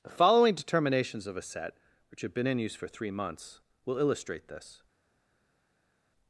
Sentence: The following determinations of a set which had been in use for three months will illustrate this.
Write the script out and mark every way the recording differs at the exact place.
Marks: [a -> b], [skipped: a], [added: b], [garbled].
The following determinations of a set which [had -> have] been in use for three months will illustrate this.